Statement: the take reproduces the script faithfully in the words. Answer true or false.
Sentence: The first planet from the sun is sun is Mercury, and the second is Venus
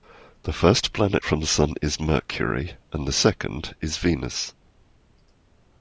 false